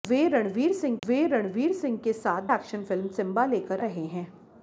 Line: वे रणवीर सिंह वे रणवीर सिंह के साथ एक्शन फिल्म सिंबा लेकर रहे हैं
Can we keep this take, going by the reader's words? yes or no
yes